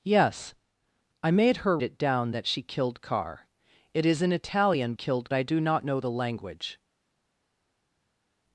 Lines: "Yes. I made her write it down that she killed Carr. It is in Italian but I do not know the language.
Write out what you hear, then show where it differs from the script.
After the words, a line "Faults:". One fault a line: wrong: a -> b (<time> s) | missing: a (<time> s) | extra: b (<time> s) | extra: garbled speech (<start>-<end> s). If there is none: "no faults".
"Yes. I made her it down that she killed Carr. It is in Italian killed I do not know the language.
Faults:
missing: write (1.8 s)
wrong: but -> killed (4.9 s)